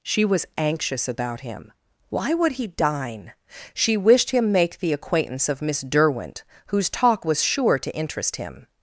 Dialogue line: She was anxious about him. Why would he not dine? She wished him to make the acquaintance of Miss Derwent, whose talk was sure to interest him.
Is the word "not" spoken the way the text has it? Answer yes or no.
no